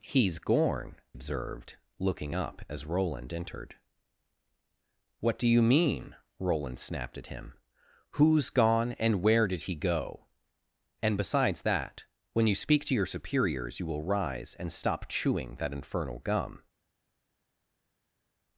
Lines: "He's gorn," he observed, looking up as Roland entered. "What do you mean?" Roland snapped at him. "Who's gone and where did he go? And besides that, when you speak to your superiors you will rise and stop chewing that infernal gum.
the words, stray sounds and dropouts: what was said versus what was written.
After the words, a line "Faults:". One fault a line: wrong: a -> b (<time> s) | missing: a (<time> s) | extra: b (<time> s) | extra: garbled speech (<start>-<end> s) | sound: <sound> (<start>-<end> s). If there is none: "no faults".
"He's gorn," observed, looking up as Roland entered. "What do you mean?" Roland snapped at him. "Who's gone and where did he go? And besides that, when you speak to your superiors you will rise and stop chewing that infernal gum.
Faults:
missing: he (0.9 s)